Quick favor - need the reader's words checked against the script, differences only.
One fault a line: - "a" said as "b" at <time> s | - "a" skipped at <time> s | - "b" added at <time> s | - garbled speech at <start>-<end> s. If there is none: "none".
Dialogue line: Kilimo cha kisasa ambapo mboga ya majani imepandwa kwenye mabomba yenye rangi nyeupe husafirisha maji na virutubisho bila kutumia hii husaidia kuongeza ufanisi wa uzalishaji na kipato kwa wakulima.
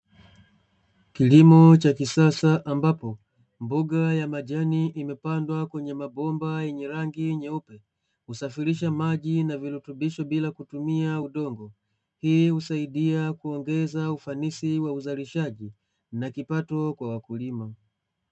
- "udongo" added at 11.2 s